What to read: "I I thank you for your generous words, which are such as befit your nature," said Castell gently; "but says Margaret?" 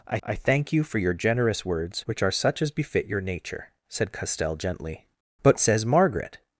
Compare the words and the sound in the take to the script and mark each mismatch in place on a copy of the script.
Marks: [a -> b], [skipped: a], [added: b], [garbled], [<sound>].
"I I thank you for your generous words, which are such as befit your nature," said Castell gently; "but says Margaret?"